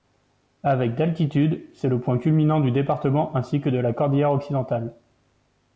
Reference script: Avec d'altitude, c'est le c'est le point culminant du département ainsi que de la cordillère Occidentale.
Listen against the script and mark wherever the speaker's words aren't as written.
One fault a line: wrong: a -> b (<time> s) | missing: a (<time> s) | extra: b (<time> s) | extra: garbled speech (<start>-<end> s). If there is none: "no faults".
missing: c'est le (2.0 s)